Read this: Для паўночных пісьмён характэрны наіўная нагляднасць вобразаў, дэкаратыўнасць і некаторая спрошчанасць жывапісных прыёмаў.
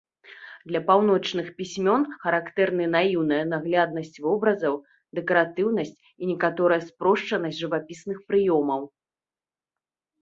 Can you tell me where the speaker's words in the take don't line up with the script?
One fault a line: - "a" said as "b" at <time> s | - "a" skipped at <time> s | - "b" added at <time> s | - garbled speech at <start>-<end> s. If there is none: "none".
none